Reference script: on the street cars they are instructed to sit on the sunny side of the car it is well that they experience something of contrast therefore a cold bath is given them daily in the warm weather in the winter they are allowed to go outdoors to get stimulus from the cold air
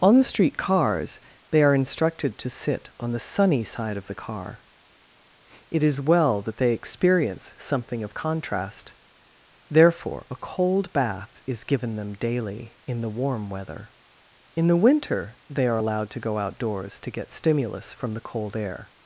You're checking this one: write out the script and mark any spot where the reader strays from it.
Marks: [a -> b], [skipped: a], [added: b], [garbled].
on the street cars they are instructed to sit on the sunny side of the car it is well that they experience something of contrast therefore a cold bath is given them daily in the warm weather in the winter they are allowed to go outdoors to get stimulus from the cold air